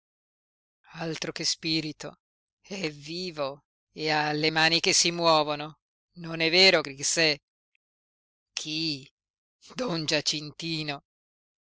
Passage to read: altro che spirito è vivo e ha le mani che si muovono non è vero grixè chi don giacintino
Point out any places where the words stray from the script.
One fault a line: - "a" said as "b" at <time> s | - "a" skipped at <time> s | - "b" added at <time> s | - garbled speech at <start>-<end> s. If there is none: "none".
none